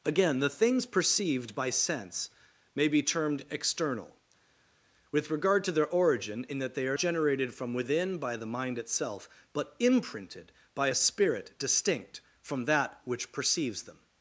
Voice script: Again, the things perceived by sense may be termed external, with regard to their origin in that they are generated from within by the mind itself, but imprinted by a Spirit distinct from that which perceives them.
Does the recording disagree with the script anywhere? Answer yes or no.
no